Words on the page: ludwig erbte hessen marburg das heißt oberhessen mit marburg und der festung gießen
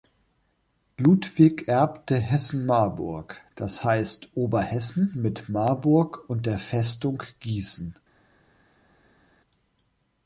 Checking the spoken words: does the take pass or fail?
pass